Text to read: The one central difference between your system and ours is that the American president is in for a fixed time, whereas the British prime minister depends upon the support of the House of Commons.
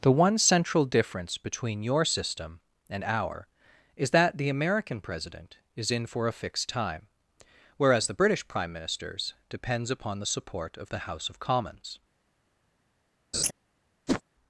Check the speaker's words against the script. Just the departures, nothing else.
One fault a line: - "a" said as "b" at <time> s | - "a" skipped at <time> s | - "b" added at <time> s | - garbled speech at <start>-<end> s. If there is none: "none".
- "ours" said as "our" at 3.0 s
- "minister" said as "ministers" at 8.7 s